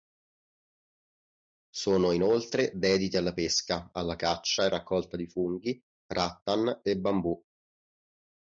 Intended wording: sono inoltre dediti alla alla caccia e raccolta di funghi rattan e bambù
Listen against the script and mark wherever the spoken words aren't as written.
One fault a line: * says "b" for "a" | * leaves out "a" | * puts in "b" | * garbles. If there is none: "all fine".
* puts in "pesca"